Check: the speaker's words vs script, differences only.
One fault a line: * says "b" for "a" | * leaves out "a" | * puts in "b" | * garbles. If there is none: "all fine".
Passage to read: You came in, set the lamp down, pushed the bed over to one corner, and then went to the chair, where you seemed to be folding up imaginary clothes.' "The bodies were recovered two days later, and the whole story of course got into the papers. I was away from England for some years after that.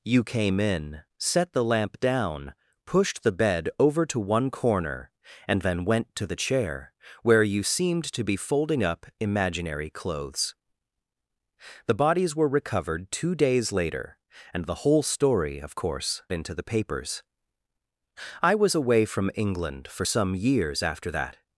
* leaves out "got"